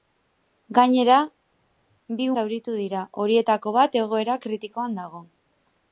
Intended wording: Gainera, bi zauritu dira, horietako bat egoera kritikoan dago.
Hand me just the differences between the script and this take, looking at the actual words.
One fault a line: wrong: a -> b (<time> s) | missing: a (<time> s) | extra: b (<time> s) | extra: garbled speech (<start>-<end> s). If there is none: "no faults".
no faults